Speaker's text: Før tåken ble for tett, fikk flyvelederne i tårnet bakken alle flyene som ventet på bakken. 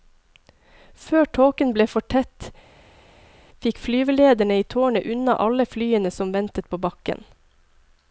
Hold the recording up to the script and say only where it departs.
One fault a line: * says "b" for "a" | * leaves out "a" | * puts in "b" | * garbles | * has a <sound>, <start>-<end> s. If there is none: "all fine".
* says "unna" for "bakken"